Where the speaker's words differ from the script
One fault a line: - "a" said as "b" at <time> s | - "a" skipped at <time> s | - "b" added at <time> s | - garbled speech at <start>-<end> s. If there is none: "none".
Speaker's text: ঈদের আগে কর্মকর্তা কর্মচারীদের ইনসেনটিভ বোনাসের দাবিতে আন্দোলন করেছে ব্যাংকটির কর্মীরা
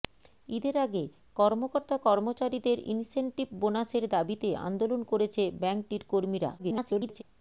- garbled speech at 6.6-7.2 s